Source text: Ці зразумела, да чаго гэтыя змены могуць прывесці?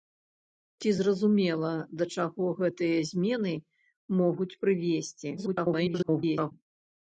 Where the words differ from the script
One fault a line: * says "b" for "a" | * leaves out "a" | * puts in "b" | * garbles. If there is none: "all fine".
* garbles